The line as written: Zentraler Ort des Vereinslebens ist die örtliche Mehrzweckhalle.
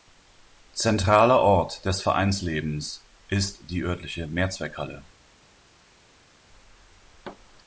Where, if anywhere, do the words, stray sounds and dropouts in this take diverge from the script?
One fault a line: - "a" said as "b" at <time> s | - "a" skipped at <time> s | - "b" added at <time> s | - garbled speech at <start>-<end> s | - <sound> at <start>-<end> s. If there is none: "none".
none